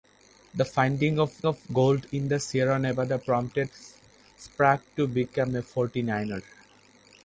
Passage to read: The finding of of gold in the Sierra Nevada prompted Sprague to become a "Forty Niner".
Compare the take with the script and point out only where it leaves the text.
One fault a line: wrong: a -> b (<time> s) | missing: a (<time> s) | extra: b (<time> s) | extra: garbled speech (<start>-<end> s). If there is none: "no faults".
no faults